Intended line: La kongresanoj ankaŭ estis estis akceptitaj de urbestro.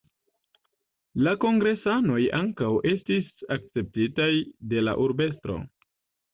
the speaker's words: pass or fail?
fail